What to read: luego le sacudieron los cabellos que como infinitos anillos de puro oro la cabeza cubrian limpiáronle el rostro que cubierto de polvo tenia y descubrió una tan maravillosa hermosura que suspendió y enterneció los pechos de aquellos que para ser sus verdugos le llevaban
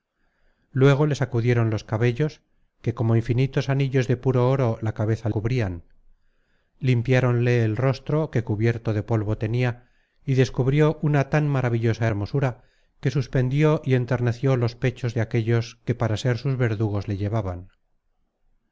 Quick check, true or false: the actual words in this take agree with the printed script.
true